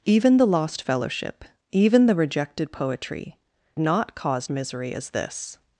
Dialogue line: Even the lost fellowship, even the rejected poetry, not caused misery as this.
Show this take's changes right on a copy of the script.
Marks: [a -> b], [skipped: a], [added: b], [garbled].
Even the lost fellowship, even the rejected poetry, not caused misery as this.